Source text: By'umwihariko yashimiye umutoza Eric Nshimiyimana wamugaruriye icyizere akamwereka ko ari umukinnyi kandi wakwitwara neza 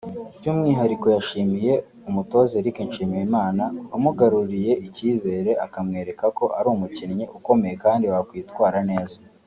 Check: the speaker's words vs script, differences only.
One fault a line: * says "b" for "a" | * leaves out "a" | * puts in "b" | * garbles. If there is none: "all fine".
* puts in "ukomeye"